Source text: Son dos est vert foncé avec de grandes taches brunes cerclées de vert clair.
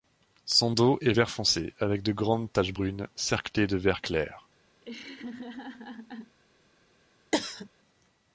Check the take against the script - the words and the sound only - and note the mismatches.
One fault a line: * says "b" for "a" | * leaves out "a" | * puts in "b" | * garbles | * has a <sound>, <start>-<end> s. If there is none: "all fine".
* has a laugh, 4.8-6.4 s
* has a cough, 7.3-7.7 s